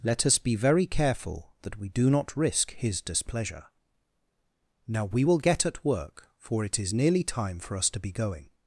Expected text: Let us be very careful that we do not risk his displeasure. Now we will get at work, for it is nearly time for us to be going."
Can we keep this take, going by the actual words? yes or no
yes